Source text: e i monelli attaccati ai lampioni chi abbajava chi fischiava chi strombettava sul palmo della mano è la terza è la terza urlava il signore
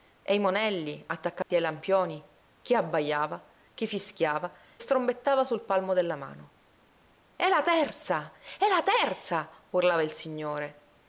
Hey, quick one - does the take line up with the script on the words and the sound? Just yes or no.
no